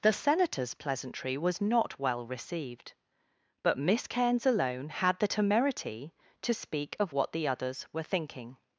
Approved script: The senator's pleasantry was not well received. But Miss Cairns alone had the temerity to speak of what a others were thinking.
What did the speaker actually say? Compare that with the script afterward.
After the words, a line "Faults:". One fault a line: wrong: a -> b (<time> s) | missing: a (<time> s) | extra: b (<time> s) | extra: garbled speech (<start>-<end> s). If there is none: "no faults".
The senator's pleasantry was not well received. But Miss Cairns alone had the temerity to speak of what the others were thinking.
Faults:
wrong: a -> the (7.3 s)